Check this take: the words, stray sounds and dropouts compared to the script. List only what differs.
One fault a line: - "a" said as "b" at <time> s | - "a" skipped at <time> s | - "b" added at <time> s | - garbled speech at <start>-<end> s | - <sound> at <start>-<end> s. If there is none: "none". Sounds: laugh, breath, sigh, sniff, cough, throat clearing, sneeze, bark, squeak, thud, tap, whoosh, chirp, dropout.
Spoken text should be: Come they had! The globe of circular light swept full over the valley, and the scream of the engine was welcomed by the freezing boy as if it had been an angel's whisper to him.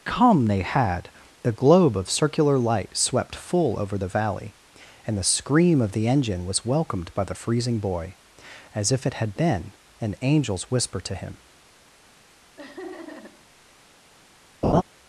- laugh at 12.6-13.5 s
- laugh at 14.6-14.8 s